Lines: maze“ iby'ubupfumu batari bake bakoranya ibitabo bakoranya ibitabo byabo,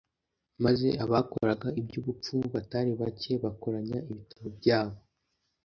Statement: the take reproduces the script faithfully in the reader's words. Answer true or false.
false